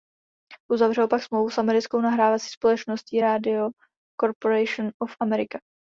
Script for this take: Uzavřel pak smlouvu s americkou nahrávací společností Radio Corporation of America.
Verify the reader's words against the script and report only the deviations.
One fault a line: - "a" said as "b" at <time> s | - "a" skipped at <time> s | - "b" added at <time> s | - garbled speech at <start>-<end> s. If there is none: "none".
none